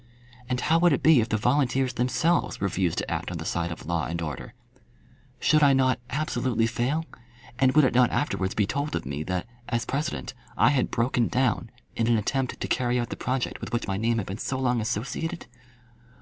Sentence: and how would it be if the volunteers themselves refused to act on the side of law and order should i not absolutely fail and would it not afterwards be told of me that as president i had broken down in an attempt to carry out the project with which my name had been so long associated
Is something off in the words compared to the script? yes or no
no